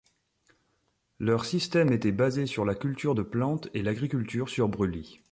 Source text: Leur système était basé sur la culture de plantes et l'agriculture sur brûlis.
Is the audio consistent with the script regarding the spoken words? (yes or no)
yes